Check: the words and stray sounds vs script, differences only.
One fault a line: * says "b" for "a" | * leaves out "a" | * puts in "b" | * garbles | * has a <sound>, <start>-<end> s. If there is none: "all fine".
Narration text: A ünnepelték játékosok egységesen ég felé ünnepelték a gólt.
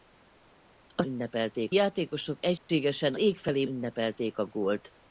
* has a dropout, 2.6-2.7 s